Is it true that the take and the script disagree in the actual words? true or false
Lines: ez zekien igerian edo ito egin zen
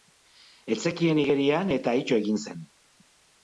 true